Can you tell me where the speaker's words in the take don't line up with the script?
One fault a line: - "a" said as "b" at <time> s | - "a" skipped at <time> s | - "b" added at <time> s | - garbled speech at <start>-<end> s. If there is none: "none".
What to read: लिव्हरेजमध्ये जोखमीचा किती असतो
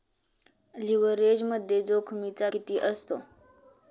none